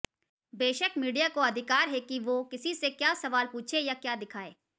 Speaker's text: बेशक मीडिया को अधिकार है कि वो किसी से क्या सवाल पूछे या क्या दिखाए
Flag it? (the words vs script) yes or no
no